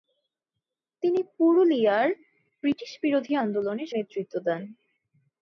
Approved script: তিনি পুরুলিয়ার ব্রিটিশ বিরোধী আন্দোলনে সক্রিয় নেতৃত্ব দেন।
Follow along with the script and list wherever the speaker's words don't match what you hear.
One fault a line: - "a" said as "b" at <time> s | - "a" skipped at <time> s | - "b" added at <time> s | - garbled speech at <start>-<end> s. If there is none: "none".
- "সক্রিয়" skipped at 3.8 s